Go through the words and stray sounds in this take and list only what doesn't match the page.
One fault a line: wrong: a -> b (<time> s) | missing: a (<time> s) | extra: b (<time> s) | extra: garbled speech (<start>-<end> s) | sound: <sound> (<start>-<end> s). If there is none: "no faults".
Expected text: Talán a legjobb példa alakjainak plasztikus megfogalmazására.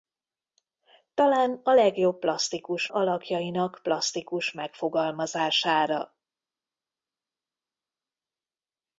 wrong: példa -> plasztikus (2.2 s)